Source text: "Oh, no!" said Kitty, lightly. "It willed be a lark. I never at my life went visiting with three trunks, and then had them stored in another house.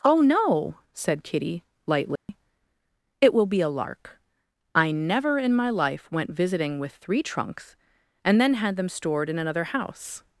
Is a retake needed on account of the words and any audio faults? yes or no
yes